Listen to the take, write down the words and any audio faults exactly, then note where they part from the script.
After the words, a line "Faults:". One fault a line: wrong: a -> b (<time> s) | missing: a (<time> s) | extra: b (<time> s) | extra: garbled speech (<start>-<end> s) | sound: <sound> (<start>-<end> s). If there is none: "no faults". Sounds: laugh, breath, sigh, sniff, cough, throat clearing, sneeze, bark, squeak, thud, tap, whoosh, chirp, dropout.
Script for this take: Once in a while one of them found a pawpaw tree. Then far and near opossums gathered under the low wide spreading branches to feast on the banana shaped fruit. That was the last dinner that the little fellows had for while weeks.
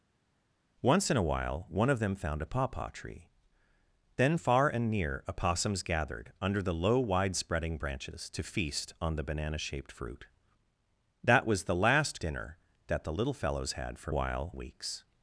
Once in a while one of them found a pawpaw tree. Then far and near opossums gathered under the low wide spreading branches to feast on the banana shaped fruit. That was the last dinner that the little fellows had for while weeks.
Faults:
no faults